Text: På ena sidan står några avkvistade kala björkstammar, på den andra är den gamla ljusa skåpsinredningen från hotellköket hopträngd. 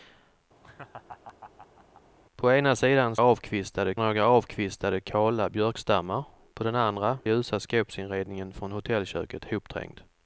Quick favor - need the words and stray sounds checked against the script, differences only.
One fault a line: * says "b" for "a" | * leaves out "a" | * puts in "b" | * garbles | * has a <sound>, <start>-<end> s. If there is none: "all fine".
* has a laugh, 0.6-2.0 s
* says "avkvistade" for "står"
* leaves out "är den gamla"